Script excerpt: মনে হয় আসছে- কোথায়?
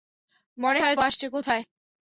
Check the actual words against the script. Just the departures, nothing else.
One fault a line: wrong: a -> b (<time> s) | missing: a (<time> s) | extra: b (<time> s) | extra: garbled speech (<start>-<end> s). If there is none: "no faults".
no faults